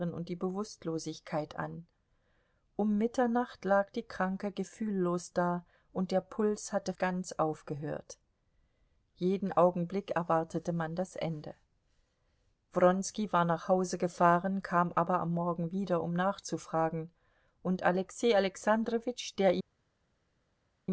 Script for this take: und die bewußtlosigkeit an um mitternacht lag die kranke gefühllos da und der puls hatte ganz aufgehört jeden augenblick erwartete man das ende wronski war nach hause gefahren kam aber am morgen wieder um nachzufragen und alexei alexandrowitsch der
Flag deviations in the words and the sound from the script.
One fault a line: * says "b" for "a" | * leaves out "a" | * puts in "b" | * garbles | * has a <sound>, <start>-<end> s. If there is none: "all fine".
all fine